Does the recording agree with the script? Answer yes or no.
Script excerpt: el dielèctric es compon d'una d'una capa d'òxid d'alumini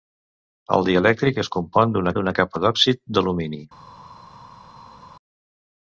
yes